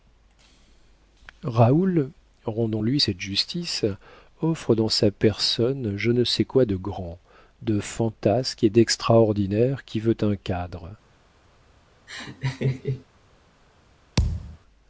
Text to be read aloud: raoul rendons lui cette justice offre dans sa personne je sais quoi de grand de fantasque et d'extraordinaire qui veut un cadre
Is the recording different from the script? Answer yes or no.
yes